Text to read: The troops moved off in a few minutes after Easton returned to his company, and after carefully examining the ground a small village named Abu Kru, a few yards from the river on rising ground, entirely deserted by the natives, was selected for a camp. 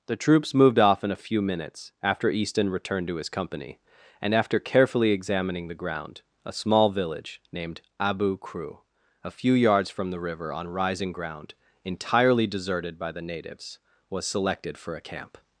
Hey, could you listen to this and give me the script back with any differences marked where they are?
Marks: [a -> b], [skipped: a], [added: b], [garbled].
The troops moved off in a few minutes after Easton returned to his company, and after carefully examining the ground a small village named Abu Kru, a few yards from the river on rising ground, entirely deserted by the natives, was selected for a camp.